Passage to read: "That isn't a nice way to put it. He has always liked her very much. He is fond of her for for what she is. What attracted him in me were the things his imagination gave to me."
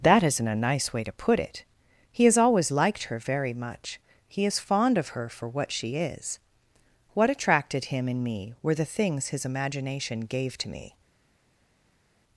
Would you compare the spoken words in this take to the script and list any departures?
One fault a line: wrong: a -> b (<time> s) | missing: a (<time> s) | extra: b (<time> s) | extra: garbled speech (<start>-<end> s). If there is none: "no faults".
missing: for (5.5 s)